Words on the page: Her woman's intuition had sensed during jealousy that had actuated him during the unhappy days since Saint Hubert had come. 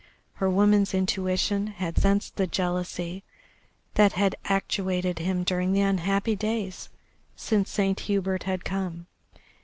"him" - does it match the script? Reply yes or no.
yes